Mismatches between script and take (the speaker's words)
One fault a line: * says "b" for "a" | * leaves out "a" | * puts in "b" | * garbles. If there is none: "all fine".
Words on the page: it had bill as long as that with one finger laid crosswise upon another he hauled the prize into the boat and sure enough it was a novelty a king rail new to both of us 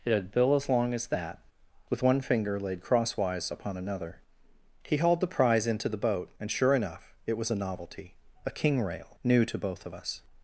all fine